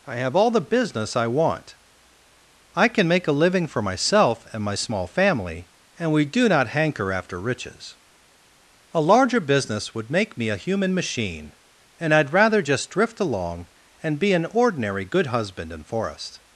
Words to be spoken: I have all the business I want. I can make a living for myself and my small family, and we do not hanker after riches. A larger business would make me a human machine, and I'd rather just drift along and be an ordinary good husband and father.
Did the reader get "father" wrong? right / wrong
wrong